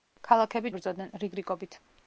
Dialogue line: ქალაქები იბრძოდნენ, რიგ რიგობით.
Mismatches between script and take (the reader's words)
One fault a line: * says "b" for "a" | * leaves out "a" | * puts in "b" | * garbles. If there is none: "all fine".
all fine